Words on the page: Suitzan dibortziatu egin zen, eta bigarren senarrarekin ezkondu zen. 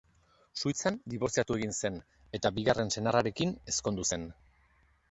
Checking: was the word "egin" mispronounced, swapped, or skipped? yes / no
no